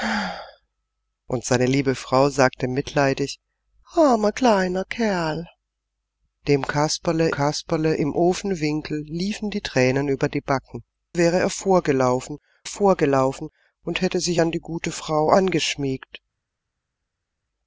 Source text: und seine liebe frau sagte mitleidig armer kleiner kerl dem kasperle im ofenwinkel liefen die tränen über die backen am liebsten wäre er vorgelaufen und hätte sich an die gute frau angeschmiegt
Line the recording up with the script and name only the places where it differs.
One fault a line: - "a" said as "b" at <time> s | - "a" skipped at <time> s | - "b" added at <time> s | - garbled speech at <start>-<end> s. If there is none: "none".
- "kasperle" added at 7.3 s
- "am liebsten" skipped at 10.8 s
- "vorgelaufen" added at 12.6 s